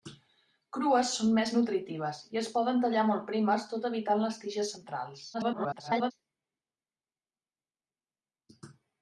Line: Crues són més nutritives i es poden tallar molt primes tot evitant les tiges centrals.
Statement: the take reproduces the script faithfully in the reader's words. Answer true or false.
false